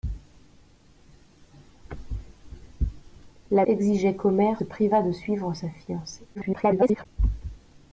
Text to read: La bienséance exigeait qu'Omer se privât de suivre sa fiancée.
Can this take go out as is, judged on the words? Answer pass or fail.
fail